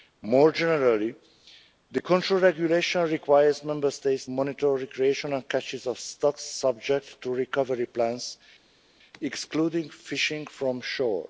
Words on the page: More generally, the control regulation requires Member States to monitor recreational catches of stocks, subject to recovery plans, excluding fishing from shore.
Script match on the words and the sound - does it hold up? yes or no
no